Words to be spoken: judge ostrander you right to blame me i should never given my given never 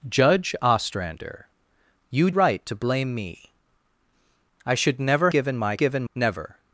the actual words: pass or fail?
pass